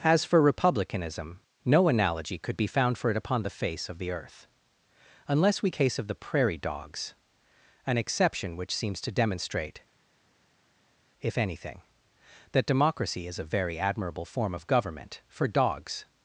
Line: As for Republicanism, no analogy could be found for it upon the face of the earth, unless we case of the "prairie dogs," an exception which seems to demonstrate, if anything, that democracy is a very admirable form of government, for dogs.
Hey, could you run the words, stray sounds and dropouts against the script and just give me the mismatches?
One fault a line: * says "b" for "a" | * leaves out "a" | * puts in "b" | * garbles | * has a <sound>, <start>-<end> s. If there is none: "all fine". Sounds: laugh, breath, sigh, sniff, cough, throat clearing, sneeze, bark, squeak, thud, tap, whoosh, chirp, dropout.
all fine